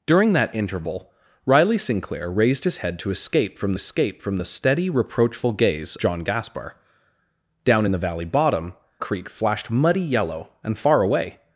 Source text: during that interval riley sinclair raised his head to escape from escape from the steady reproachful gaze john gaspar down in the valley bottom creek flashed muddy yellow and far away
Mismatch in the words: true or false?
false